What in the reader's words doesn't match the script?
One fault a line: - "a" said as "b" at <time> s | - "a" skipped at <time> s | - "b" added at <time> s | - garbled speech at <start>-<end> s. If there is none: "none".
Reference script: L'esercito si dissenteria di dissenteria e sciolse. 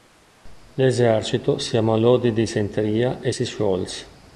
- "dissenteria" said as "ammalò" at 1.8 s
- "si" added at 3.3 s